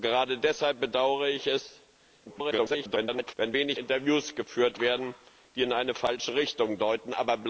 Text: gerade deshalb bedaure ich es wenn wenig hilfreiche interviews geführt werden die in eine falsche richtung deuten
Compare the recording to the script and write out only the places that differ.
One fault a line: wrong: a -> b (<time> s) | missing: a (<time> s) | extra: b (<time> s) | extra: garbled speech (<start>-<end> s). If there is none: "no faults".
extra: garbled speech (2.3-3.3 s)
missing: hilfreiche (3.8 s)